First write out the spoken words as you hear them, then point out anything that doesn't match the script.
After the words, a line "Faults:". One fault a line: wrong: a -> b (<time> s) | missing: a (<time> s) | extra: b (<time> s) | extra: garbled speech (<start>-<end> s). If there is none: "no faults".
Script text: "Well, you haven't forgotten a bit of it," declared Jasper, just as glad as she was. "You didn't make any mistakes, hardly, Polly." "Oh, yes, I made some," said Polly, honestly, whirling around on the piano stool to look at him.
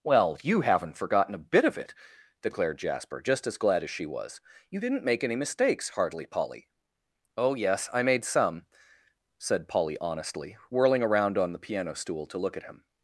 "Well, you haven't forgotten a bit of it," declared Jasper, just as glad as she was. "You didn't make any mistakes, hardly, Polly." "Oh, yes, I made some," said Polly, honestly, whirling around on the piano stool to look at him.
Faults:
no faults